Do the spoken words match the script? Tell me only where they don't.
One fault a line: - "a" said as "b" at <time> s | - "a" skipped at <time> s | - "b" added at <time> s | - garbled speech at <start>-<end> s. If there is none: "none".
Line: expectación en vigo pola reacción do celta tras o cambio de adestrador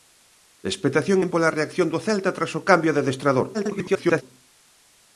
- "vigo" skipped at 1.3 s
- garbled speech at 3.5-4.2 s